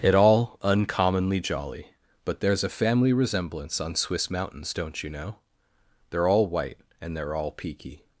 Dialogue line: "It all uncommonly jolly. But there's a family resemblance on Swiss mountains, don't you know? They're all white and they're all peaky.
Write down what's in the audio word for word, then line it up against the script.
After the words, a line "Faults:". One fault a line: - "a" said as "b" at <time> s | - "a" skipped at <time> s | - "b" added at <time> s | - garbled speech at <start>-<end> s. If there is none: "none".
"It all uncommonly jolly. But there's a family resemblance on Swiss mountains, don't you know? They're all white and they're all peaky.
Faults:
none